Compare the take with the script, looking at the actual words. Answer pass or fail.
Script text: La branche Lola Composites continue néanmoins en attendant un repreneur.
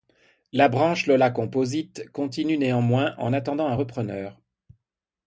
pass